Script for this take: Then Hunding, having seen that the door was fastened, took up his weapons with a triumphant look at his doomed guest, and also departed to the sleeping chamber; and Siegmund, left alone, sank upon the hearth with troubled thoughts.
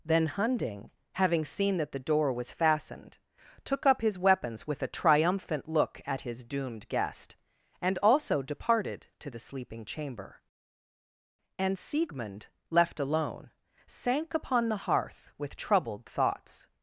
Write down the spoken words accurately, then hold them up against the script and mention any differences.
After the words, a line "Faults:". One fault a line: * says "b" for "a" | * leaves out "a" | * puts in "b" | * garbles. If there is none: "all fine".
Then Hunding, having seen that the door was fastened, took up his weapons with a triumphant look at his doomed guest, and also departed to the sleeping chamber; and Siegmund, left alone, sank upon the hearth with troubled thoughts.
Faults:
all fine